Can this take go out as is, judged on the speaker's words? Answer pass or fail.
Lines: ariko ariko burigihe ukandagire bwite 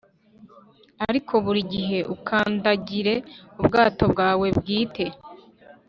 fail